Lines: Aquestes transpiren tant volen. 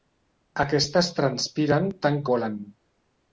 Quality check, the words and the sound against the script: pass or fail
pass